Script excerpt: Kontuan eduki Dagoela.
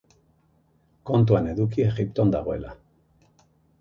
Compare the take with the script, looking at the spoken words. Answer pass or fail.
fail